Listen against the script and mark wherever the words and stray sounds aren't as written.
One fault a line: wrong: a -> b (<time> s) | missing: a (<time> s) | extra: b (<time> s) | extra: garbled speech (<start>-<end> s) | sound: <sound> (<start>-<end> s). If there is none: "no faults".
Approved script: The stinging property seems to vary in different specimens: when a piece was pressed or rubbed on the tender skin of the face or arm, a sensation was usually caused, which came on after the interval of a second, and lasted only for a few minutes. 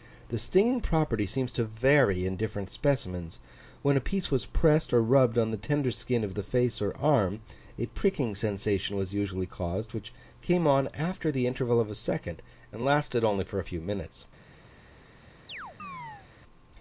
extra: pricking (7.8 s)
sound: chirp (15.5-16.3 s)